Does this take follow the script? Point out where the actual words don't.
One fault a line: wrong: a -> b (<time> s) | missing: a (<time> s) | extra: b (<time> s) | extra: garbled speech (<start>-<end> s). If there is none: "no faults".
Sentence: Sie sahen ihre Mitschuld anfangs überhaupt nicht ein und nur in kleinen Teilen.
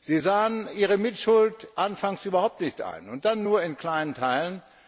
extra: dann (3.2 s)